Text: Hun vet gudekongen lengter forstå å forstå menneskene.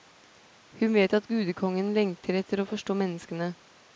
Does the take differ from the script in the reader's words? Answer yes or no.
yes